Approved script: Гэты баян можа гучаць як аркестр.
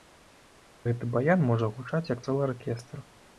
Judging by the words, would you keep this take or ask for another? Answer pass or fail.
fail